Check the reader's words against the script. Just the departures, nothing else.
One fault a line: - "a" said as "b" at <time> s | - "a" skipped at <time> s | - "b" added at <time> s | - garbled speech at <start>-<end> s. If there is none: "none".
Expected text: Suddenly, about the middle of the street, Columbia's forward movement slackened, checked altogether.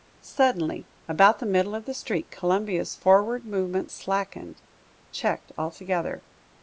none